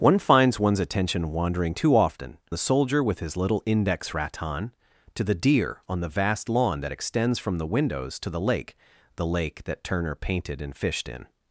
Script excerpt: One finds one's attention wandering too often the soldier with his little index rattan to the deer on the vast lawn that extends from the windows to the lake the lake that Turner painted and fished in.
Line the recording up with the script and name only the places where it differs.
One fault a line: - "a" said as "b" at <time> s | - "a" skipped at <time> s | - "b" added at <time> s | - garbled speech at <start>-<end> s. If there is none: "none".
none